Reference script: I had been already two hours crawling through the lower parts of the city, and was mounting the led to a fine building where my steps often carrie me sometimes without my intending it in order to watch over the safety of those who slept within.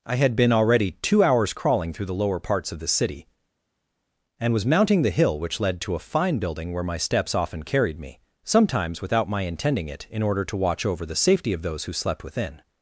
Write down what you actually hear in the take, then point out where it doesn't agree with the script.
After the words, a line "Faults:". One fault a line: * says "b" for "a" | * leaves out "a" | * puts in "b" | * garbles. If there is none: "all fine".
I had been already two hours crawling through the lower parts of the city, and was mounting the hill which led to a fine building where my steps often carried me sometimes without my intending it in order to watch over the safety of those who slept within.
Faults:
* puts in "hill which"
* says "carried" for "carrie"